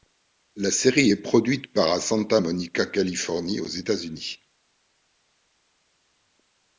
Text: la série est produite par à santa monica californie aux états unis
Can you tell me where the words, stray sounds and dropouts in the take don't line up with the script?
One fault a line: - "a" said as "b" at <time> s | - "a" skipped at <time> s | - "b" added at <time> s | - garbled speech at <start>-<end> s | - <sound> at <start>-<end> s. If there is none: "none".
none